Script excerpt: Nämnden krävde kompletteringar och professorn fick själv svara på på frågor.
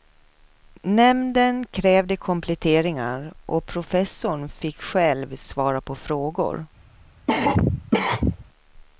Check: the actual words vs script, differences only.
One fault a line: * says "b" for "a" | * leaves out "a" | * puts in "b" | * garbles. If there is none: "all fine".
* leaves out "på"